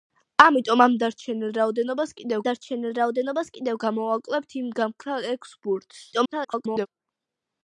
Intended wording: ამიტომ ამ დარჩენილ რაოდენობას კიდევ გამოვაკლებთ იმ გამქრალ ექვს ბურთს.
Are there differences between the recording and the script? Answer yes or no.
yes